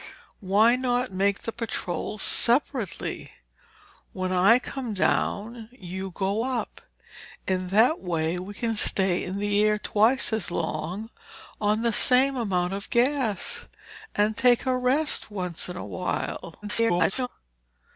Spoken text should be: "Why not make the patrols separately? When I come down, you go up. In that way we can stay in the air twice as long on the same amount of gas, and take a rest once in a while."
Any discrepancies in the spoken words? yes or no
yes